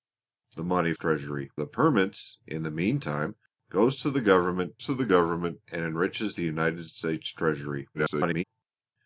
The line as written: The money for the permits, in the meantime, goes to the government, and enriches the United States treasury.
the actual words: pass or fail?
fail